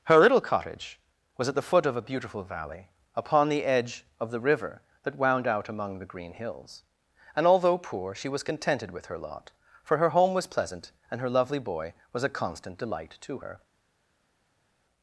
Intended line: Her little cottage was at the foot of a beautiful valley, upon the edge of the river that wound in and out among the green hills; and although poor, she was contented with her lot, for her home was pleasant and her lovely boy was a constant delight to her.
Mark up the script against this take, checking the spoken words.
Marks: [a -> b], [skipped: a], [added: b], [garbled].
Her little cottage was at the foot of a beautiful valley, upon the edge of the river that wound [skipped: in and] out among the green hills; and although poor, she was contented with her lot, for her home was pleasant and her lovely boy was a constant delight to her.